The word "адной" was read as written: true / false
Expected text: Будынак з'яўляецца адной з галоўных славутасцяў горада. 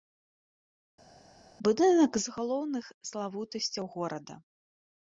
false